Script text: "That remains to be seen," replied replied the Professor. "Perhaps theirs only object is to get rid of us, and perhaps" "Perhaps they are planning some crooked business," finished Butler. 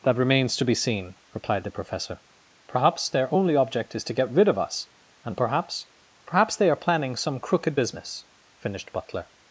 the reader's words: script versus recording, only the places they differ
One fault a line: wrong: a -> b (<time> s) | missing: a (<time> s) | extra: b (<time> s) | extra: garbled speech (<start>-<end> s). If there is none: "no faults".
missing: replied (1.6 s)
wrong: theirs -> their (3.1 s)